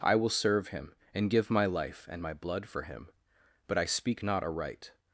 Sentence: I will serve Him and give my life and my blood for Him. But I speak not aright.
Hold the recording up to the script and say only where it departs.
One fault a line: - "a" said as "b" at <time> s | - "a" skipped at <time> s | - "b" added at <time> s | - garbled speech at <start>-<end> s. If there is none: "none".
none